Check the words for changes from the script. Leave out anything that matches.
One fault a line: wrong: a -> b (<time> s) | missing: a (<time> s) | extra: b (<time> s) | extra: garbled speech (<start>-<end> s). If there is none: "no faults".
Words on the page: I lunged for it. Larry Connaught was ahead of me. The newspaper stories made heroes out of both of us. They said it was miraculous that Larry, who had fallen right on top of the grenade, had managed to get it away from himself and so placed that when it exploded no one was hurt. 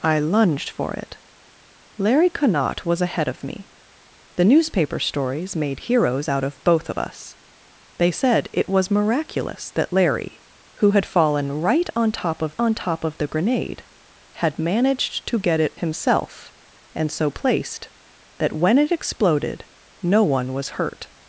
extra: on top of (12.6 s)
missing: away from (15.7 s)